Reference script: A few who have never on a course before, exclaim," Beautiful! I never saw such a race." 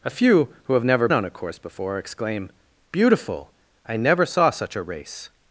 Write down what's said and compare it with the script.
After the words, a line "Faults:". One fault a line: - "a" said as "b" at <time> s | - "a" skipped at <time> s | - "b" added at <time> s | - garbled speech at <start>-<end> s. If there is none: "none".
A few who have never on a course before, exclaim," Beautiful! I never saw such a race."
Faults:
none